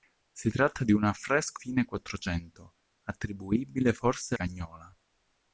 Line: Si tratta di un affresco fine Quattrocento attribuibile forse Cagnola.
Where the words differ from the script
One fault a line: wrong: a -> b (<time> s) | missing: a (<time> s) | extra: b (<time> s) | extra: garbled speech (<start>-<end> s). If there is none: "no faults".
no faults